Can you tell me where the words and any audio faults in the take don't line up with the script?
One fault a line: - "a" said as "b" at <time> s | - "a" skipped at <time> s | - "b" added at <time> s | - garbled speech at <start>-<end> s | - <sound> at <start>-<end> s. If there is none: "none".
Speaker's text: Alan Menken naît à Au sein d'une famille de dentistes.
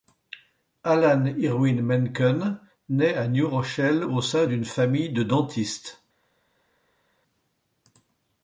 - "Irwin" added at 1.4 s
- "New Rochelle" added at 3.3 s